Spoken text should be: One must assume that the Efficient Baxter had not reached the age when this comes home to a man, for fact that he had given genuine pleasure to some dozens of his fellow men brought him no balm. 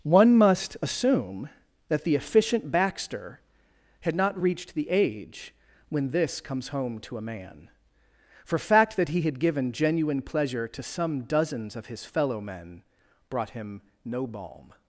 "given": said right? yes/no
yes